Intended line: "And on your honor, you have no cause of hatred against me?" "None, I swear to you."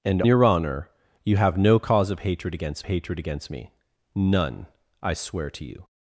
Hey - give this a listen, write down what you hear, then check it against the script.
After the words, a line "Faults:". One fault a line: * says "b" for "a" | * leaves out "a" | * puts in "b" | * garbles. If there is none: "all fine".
"And your honor, you have no cause of hatred against hatred against me?" "None, I swear to you."
Faults:
* leaves out "on"
* puts in "hatred against"